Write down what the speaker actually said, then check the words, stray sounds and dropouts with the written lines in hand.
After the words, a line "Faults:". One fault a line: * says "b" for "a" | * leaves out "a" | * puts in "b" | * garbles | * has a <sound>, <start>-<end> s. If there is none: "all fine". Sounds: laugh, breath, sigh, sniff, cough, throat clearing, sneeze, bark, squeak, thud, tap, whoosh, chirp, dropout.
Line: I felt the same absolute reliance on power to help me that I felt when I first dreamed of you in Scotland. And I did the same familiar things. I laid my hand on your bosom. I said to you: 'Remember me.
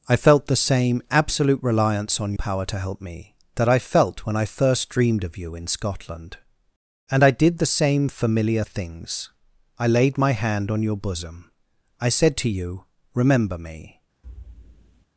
I felt the same absolute reliance on power to help me that I felt when I first dreamed of you in Scotland. And I did the same familiar things. I laid my hand on your bosom. I said to you: 'Remember me.
Faults:
* has a thud, 14.2-15.1 s